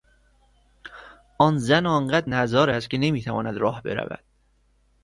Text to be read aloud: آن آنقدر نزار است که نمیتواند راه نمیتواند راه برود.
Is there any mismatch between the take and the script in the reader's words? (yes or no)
yes